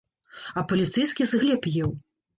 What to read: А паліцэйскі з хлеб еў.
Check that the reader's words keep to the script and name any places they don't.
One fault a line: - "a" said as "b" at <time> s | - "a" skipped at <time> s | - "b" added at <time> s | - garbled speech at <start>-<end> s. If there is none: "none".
none